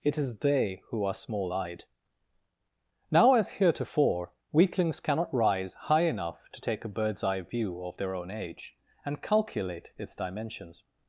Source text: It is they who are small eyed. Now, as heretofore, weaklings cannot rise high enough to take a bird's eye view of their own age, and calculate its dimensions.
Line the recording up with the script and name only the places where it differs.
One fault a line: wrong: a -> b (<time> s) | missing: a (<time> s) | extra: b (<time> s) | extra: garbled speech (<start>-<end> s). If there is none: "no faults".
no faults